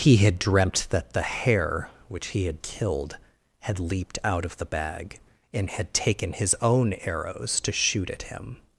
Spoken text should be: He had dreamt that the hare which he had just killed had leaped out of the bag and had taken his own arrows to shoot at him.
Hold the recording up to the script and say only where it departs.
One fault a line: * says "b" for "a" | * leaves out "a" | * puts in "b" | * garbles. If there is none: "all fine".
* leaves out "just"